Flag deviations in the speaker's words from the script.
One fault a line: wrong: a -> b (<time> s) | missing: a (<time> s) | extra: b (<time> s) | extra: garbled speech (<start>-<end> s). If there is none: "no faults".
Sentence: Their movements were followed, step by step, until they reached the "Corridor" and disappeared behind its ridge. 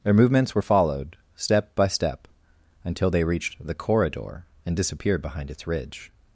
no faults